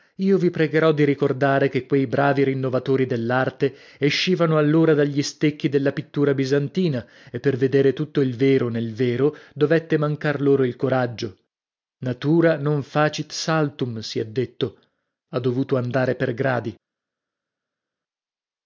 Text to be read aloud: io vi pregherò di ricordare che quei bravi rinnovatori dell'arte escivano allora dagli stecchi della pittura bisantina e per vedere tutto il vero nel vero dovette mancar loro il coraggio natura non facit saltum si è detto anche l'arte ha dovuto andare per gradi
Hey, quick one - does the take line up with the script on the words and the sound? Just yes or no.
no